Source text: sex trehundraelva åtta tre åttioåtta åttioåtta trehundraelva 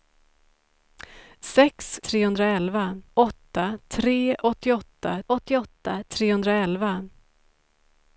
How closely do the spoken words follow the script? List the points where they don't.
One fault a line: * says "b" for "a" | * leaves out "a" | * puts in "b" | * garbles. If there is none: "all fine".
all fine